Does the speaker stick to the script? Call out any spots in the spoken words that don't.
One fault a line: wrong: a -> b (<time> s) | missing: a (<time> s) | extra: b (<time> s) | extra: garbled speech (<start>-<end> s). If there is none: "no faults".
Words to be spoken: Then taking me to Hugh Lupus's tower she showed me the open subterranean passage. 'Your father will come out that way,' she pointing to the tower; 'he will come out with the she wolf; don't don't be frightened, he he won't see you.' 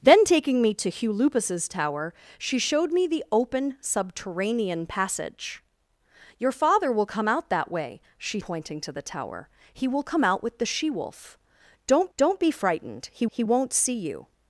no faults